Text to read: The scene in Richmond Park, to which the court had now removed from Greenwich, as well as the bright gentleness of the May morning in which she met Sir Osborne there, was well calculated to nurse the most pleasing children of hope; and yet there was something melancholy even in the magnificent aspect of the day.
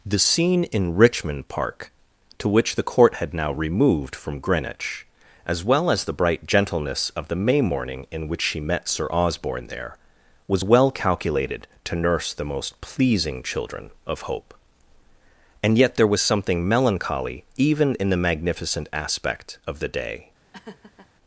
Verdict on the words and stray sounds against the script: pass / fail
fail